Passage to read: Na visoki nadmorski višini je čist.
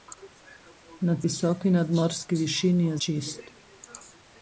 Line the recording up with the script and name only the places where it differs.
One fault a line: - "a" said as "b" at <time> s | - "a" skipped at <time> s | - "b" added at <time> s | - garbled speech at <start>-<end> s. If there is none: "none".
none